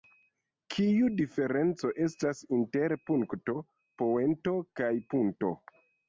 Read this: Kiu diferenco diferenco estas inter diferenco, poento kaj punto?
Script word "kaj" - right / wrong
right